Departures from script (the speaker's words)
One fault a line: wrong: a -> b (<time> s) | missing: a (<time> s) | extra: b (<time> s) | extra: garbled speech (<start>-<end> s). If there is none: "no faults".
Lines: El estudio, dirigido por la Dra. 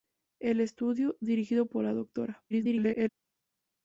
extra: garbled speech (2.5-3.1 s)